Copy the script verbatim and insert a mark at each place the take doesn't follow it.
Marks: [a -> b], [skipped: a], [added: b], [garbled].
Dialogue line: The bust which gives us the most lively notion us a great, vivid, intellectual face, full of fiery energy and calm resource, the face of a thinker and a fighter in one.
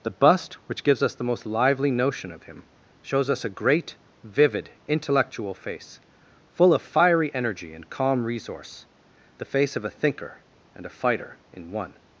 The bust which gives us the most lively notion [added: of him shows] us a great, vivid, intellectual face, full of fiery energy and calm resource, the face of a thinker and a fighter in one.